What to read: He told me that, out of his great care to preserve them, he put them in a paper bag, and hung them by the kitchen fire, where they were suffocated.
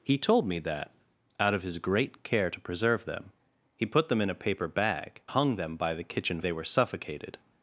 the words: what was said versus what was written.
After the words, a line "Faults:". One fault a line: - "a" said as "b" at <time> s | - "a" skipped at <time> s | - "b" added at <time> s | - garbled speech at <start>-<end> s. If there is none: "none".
He told me that, out of his great care to preserve them, he put them in a paper bag, hung them by the kitchen they were suffocated.
Faults:
- "and" skipped at 5.2 s
- "fire where" skipped at 6.4 s